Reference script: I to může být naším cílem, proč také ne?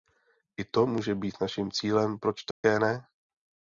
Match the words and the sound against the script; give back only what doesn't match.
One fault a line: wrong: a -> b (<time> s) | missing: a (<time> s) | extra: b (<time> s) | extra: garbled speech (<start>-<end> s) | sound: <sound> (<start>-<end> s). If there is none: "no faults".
sound: dropout (2.5-2.6 s)